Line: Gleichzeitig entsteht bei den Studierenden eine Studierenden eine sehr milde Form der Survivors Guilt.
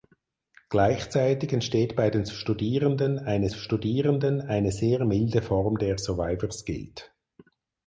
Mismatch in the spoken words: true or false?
false